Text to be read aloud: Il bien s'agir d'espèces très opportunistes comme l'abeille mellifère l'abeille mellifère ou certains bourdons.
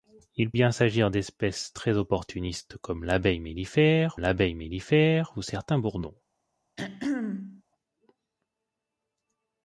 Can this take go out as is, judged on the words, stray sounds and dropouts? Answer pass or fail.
fail